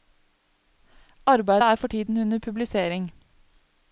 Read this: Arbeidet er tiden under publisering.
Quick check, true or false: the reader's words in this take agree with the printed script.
false